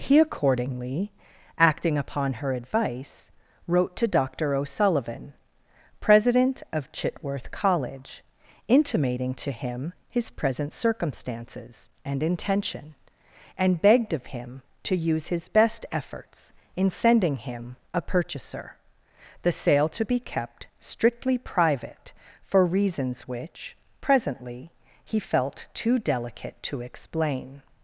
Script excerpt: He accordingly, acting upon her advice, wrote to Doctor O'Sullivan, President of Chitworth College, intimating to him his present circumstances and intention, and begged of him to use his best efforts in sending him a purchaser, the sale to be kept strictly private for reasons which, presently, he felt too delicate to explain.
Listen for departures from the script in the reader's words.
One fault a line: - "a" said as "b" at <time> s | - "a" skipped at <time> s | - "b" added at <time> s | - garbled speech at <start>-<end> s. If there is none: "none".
none